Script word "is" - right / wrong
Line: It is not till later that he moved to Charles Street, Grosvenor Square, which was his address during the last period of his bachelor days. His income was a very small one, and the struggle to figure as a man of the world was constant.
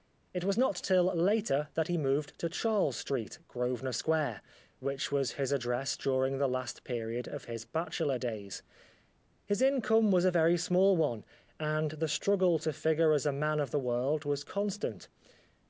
wrong